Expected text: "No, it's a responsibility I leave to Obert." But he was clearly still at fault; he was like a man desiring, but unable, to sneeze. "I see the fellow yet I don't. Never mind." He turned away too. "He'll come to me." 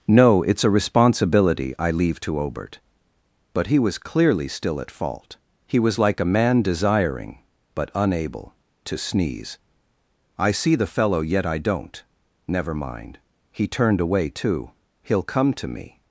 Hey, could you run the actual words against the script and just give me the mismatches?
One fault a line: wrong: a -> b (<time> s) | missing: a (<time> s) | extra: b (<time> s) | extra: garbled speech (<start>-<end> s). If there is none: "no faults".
no faults